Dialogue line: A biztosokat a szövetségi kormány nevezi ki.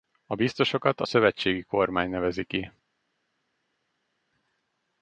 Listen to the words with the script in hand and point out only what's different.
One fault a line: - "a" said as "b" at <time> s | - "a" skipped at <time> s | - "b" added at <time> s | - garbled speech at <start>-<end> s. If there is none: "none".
none